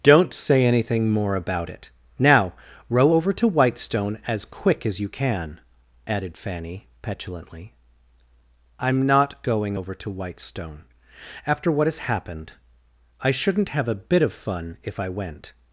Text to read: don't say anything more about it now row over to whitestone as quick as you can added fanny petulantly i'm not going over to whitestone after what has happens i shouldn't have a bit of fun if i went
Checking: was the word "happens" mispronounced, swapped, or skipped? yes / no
yes